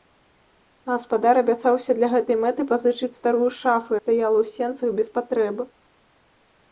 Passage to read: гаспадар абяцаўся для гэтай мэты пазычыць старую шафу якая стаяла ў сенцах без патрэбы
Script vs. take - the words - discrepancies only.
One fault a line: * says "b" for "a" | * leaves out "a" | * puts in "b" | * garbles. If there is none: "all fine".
* leaves out "якая"